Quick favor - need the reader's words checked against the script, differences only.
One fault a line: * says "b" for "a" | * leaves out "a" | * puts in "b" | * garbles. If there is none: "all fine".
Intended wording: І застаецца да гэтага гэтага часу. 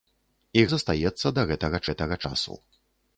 all fine